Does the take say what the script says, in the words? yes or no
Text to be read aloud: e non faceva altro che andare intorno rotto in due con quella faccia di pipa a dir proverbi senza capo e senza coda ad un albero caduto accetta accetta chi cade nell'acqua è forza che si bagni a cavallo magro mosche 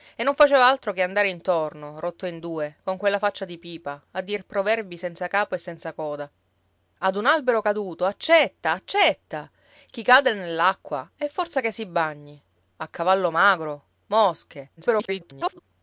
no